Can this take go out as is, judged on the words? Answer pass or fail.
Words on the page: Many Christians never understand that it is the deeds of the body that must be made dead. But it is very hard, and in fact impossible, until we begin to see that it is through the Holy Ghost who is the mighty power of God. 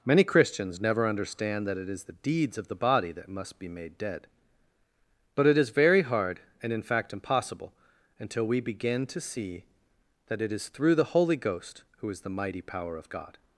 pass